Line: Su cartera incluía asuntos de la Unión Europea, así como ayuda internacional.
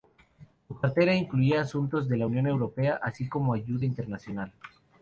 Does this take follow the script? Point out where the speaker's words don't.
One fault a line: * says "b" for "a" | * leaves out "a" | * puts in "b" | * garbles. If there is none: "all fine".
all fine